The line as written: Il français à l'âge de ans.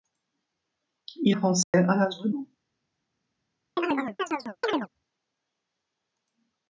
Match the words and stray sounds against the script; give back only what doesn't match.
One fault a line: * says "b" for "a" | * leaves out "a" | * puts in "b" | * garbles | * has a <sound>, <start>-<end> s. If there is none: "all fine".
* has a dropout, 1.6-1.7 s
* has a chirp, 3.8-4.9 s